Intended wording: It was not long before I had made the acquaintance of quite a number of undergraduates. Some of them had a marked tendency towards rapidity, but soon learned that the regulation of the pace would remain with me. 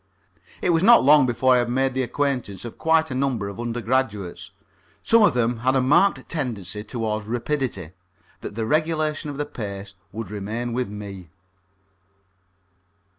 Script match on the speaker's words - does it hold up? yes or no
no